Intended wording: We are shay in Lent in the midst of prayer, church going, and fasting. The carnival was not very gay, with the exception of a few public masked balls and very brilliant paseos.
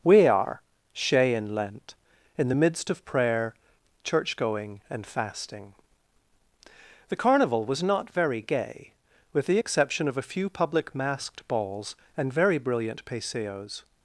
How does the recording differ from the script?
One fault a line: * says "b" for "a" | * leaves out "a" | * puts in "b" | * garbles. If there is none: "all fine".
all fine